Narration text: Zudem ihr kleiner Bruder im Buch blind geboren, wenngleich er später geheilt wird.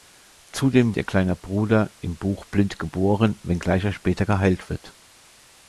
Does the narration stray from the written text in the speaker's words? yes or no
no